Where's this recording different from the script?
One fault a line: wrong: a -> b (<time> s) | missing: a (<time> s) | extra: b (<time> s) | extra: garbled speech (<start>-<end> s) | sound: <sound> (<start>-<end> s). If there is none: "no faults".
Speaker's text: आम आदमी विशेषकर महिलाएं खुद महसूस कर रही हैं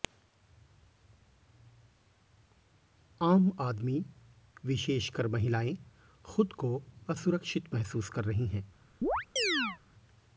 extra: को असुरक्षित (6.5 s)
sound: chirp (9.0-9.8 s)